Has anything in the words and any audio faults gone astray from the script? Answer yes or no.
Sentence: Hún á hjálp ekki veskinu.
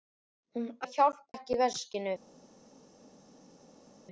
no